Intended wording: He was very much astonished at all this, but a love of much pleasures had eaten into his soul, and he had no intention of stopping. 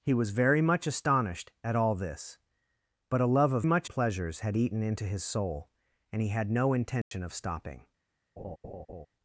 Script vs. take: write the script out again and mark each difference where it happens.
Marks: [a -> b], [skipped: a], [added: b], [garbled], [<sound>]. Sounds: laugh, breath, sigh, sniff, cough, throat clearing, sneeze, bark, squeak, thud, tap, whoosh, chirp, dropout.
He was very much astonished at all this, but a love of much pleasures had eaten into his soul, and he had no intention [dropout] of stopping. [laugh]